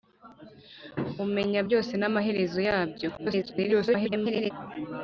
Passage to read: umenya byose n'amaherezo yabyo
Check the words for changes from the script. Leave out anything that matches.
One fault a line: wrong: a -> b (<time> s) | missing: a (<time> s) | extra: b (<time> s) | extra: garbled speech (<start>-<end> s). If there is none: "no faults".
extra: garbled speech (3.2-4.5 s)